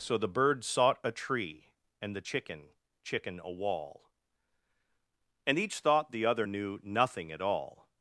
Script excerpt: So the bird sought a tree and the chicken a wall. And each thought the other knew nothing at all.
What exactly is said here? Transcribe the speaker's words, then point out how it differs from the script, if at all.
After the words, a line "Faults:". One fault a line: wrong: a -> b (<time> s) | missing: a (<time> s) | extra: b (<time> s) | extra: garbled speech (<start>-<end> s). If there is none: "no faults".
So the bird sought a tree and the chicken chicken a wall. And each thought the other knew nothing at all.
Faults:
extra: chicken (3.0 s)